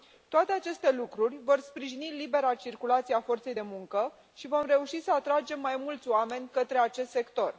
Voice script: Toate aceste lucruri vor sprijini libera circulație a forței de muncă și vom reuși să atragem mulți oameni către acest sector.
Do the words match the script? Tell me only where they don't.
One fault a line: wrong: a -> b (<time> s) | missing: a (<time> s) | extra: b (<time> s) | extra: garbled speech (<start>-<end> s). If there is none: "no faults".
extra: mai (5.6 s)